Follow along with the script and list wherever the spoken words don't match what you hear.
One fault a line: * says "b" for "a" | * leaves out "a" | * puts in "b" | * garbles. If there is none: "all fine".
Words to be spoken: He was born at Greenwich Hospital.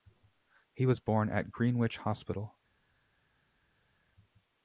all fine